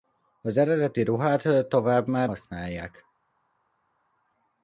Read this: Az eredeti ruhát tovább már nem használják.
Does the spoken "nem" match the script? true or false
false